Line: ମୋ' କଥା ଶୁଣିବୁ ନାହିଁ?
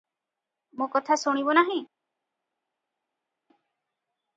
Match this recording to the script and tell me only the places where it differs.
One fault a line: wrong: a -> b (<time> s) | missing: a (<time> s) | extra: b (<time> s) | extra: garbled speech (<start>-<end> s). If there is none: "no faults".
no faults